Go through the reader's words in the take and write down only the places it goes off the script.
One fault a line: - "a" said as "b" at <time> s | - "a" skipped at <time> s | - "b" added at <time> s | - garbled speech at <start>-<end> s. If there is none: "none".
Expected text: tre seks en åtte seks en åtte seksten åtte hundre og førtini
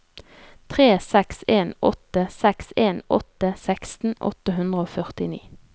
none